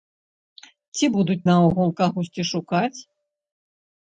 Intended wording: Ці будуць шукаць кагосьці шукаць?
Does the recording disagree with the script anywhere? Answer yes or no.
yes